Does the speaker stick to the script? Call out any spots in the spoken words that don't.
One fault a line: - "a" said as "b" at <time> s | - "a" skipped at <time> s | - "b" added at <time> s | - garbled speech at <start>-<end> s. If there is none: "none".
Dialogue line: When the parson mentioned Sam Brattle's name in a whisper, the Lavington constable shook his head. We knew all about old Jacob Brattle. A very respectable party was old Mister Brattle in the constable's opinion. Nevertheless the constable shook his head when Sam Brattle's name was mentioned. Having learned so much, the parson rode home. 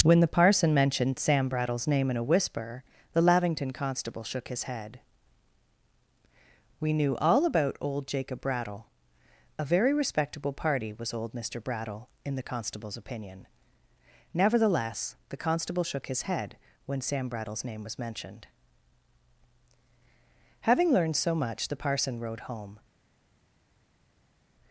none